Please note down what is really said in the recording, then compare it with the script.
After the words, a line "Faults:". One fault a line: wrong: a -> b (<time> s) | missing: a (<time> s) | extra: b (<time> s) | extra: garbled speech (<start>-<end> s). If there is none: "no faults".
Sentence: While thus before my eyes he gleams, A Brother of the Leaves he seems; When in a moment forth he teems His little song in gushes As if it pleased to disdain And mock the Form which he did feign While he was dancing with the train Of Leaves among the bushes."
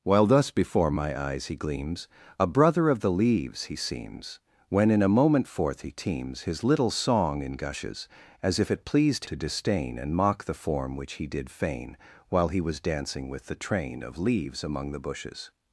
While thus before my eyes he gleams, A Brother of the Leaves he seems; When in a moment forth he teems His little song in gushes As if it pleased to disdain And mock the Form which he did feign While he was dancing with the train Of Leaves among the bushes."
Faults:
no faults